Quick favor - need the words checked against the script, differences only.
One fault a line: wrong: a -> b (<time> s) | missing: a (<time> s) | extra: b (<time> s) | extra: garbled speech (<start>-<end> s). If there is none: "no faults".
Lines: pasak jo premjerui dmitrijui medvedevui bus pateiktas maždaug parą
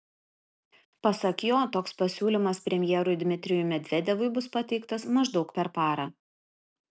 extra: toks pasiūlymas (1.8 s)
extra: per (5.6 s)